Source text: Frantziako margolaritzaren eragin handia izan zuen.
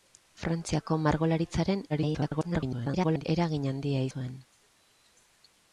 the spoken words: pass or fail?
fail